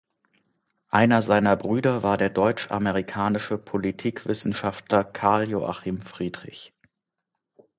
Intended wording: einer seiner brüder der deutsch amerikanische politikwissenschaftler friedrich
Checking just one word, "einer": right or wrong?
right